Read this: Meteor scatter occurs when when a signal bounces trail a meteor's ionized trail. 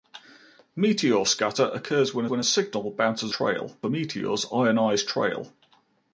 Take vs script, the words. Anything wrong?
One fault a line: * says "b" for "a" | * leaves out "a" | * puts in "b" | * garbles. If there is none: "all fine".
all fine